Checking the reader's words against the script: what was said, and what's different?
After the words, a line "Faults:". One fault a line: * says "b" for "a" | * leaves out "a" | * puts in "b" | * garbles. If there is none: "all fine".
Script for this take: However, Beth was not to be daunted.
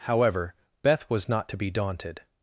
However, Beth was not to be daunted.
Faults:
all fine